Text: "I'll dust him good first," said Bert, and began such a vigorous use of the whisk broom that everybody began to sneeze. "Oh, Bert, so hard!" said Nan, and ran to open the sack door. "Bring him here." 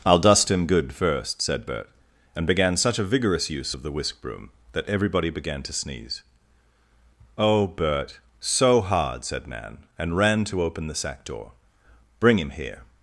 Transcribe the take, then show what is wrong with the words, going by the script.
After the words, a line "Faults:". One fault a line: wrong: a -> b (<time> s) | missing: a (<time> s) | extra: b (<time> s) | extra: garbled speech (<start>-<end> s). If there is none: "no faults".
"I'll dust him good first," said Bert, and began such a vigorous use of the whisk broom that everybody began to sneeze. "Oh, Bert, so hard!" said Nan, and ran to open the sack door. "Bring him here."
Faults:
no faults